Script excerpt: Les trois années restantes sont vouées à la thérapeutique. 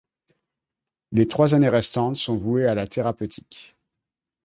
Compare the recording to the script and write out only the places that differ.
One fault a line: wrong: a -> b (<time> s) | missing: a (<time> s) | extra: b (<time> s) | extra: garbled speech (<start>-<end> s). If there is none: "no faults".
no faults